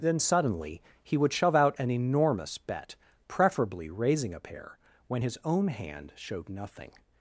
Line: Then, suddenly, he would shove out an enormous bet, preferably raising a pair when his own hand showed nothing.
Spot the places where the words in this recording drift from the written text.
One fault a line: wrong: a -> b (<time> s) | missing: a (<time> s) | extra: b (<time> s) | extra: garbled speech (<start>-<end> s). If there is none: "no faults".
no faults